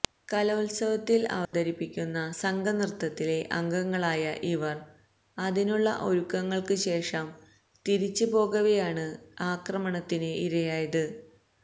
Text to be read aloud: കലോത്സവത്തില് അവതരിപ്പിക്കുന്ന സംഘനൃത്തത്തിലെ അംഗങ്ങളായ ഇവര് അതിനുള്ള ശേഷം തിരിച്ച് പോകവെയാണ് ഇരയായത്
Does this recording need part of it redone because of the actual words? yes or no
yes